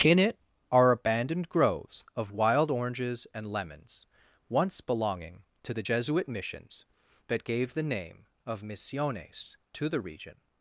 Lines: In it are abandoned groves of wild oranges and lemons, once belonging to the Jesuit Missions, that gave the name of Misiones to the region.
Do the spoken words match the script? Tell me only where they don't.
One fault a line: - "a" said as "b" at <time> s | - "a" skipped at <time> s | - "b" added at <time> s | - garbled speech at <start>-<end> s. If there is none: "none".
none